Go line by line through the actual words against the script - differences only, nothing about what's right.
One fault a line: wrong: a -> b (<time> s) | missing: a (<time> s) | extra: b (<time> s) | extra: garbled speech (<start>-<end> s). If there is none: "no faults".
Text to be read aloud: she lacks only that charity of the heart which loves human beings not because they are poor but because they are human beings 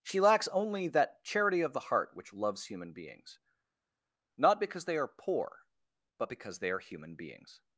no faults